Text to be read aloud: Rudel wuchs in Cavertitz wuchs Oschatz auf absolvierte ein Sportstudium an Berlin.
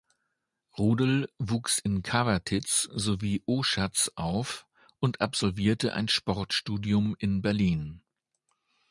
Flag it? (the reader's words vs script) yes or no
yes